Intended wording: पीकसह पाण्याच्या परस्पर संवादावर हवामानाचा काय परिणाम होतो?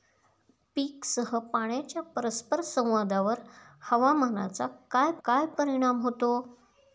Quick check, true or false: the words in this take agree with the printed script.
false